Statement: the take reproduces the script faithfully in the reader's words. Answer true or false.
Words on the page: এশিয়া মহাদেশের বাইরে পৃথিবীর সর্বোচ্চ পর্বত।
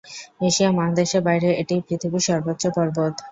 false